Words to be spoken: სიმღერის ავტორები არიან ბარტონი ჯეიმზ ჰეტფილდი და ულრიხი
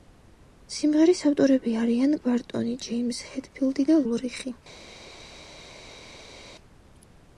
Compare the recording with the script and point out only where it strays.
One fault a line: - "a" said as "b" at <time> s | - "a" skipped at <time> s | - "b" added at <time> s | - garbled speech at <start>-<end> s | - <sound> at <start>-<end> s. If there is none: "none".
none